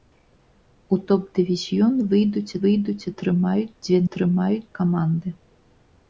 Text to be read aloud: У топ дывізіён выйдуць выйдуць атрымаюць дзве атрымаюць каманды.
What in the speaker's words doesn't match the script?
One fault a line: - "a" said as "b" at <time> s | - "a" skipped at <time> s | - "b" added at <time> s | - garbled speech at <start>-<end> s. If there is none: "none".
none